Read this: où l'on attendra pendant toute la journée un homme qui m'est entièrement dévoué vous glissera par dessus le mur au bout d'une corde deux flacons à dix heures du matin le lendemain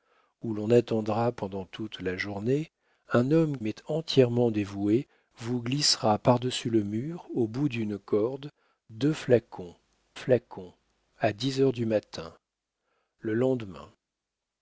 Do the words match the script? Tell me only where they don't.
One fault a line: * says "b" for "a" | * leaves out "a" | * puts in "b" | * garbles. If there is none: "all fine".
* leaves out "qui"
* puts in "flacons"